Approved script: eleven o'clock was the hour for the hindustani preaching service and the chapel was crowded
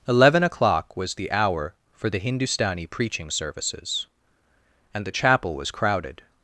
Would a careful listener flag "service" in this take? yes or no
yes